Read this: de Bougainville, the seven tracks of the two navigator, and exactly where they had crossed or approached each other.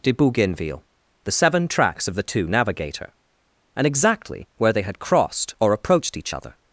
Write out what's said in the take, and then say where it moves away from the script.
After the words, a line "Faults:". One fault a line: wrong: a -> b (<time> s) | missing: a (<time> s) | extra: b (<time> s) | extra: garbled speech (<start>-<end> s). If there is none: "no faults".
de Bougainville, the seven tracks of the two navigator, and exactly where they had crossed or approached each other.
Faults:
no faults